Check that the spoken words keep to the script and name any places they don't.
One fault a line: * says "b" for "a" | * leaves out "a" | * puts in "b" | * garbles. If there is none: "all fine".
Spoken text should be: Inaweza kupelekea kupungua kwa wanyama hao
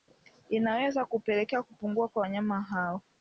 all fine